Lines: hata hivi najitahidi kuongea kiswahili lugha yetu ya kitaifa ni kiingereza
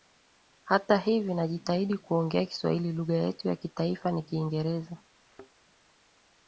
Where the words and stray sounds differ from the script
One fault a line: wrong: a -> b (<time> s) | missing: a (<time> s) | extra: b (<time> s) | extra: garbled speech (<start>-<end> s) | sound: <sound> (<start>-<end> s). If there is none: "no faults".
sound: thud (5.2-5.5 s)